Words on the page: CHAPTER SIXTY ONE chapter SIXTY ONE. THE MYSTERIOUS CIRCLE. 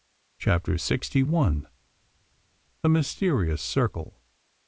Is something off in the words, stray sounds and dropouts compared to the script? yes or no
yes